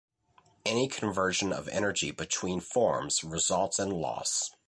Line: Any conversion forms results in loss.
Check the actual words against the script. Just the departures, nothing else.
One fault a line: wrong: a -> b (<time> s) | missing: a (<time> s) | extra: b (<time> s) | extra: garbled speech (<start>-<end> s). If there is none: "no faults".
extra: of energy between (1.5 s)